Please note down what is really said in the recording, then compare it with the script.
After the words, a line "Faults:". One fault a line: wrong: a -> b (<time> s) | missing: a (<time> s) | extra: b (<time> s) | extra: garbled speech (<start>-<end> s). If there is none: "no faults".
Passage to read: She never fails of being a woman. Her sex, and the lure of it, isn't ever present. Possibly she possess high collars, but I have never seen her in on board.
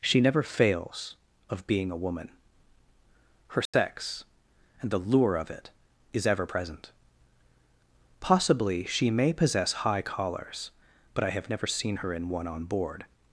She never fails of being a woman. Her sex, and the lure of it, is ever present. Possibly she may possess high collars, but I have never seen her in one on board.
Faults:
wrong: isn't -> is (6.1 s)
extra: may (9.1 s)
extra: one (12.3 s)